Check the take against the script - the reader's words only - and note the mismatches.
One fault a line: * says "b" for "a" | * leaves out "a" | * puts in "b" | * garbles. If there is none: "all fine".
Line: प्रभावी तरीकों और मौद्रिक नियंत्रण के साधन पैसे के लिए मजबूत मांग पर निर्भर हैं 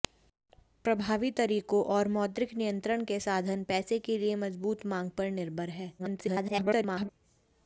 * garbles